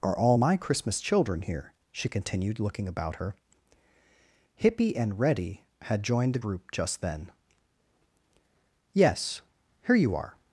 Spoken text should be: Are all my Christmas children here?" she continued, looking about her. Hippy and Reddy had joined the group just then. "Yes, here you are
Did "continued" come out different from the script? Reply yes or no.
no